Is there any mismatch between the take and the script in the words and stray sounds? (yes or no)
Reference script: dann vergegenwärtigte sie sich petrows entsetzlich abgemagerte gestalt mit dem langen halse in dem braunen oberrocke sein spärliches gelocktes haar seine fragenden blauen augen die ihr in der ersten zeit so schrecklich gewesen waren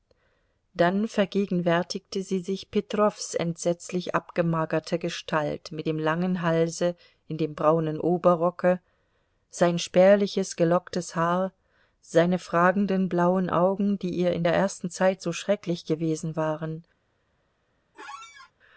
yes